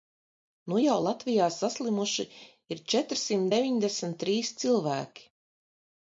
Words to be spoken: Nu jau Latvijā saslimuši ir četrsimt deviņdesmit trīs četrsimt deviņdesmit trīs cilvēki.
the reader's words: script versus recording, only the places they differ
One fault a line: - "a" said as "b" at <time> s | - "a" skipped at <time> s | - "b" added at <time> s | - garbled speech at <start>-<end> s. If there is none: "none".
- "četrsimt deviņdesmit trīs" skipped at 4.5 s